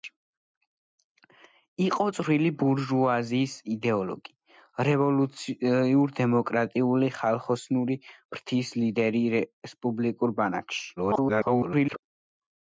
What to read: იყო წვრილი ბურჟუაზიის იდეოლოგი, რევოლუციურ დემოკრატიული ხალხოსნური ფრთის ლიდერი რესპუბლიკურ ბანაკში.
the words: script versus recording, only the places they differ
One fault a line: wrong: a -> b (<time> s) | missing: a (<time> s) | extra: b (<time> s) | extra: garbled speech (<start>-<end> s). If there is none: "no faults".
extra: garbled speech (11.0-12.0 s)